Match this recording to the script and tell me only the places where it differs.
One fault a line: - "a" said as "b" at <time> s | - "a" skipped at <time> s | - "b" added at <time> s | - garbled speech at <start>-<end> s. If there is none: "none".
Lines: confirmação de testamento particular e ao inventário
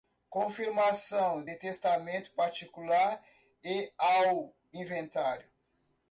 none